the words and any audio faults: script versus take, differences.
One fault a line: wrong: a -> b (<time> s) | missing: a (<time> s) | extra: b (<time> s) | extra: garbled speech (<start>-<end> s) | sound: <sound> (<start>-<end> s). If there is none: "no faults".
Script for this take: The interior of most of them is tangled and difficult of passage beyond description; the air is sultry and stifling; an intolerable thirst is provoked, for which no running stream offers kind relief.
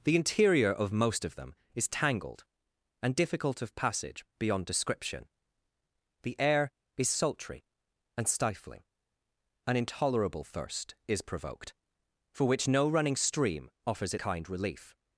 no faults